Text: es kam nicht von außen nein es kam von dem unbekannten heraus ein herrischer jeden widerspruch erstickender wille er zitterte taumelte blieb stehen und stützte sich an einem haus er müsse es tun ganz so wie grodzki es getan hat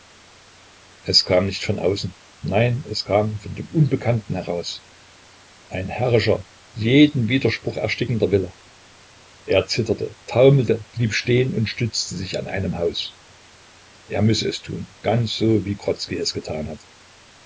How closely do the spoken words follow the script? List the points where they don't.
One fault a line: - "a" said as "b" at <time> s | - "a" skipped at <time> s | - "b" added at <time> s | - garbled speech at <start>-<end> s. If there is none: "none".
none